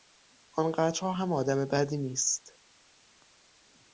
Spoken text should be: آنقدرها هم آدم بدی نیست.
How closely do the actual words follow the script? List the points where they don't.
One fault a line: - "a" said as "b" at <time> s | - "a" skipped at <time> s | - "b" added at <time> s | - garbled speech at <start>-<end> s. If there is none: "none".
none